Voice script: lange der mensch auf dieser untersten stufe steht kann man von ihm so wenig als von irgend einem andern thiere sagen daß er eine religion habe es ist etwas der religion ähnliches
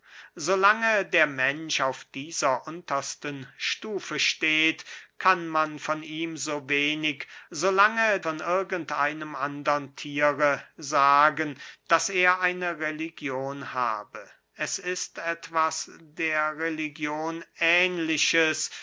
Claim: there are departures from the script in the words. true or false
true